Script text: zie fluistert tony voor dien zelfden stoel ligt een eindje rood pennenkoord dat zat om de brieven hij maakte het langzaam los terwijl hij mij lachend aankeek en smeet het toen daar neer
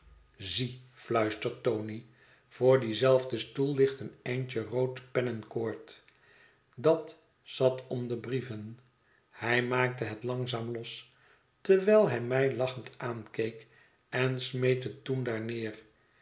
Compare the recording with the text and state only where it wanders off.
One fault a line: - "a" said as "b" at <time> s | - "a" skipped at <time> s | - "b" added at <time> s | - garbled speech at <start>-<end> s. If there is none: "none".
none